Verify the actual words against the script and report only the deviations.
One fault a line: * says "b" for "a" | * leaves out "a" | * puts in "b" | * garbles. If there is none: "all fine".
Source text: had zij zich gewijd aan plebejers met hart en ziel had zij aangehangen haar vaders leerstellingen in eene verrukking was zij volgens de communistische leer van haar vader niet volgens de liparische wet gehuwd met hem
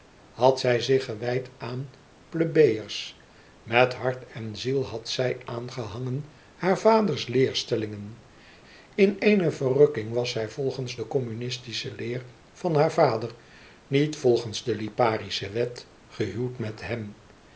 all fine